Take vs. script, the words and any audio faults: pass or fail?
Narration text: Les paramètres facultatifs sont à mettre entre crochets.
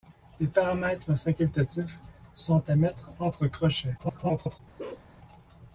fail